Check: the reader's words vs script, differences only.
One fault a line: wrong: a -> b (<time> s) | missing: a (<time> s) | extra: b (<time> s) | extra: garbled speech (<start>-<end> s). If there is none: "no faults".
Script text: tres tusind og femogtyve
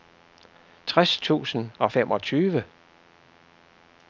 no faults